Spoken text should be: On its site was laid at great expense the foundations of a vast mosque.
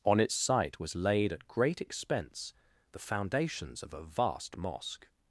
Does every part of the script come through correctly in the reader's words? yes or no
yes